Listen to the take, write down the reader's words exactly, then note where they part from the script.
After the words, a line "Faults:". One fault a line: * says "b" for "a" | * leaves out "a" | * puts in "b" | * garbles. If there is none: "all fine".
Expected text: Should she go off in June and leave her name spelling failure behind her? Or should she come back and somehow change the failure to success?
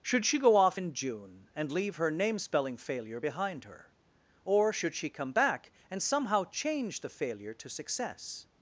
Should she go off in June and leave her name spelling failure behind her? Or should she come back and somehow change the failure to success?
Faults:
all fine